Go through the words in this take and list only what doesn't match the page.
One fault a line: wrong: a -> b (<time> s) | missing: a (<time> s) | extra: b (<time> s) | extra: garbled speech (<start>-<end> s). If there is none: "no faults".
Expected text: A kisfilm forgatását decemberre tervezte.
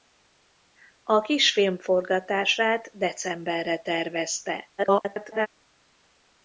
extra: garbled speech (4.8-5.5 s)